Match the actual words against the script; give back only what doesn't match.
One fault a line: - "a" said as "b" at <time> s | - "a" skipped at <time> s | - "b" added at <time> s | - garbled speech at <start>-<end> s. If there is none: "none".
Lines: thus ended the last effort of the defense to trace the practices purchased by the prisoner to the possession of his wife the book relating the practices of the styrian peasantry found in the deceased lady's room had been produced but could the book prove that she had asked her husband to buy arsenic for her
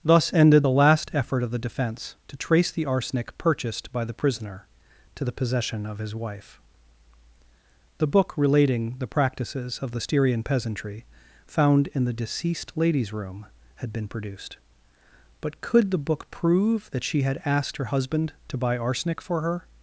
- "practices" said as "arsenic" at 2.9 s